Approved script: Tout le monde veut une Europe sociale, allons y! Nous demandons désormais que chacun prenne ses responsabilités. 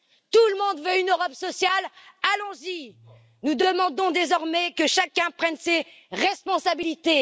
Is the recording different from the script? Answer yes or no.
no